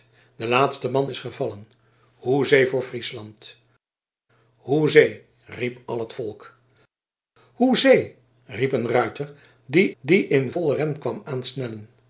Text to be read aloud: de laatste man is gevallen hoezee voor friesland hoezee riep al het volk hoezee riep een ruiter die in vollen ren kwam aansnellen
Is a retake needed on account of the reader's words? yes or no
yes